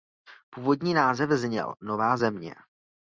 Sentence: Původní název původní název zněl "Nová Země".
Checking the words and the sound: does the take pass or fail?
fail